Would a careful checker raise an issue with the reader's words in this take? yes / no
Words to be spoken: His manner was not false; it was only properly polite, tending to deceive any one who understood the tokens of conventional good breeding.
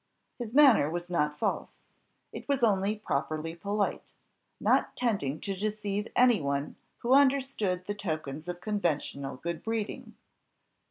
yes